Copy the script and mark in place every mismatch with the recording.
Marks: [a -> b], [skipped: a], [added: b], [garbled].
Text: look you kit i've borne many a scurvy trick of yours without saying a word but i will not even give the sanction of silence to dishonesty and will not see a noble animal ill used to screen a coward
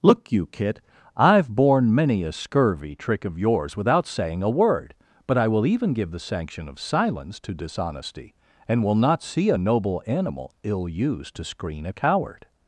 look you kit i've borne many a scurvy trick of yours without saying a word but i will [skipped: not] even give the sanction of silence to dishonesty and will not see a noble animal ill used to screen a coward